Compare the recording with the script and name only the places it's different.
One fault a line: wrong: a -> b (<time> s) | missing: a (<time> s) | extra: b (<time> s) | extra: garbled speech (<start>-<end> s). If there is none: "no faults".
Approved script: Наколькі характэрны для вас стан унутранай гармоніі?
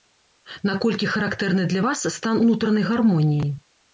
no faults